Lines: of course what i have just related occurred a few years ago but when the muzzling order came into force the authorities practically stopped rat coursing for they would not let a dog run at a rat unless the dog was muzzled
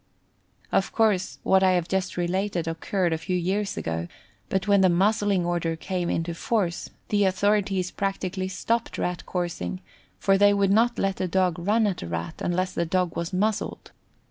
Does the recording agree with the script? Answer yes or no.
yes